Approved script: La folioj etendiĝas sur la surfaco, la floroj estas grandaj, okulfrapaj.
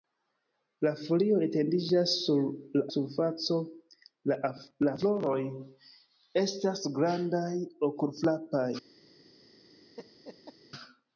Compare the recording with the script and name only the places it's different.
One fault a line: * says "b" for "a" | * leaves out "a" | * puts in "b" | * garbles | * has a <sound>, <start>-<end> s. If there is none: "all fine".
* has a laugh, 10.0-10.6 s